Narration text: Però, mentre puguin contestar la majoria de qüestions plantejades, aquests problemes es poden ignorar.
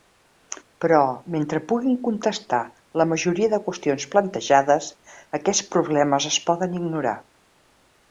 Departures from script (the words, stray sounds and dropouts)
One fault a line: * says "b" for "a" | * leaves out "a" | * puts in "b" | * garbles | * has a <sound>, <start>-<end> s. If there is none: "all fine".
all fine